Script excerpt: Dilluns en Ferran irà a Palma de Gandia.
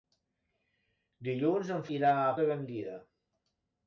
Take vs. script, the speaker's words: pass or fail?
fail